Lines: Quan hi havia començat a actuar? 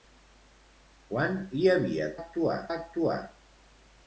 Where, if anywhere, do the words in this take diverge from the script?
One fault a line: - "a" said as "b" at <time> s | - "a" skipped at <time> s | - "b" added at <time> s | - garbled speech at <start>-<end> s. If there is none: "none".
- "començat" said as "actuar" at 2.2 s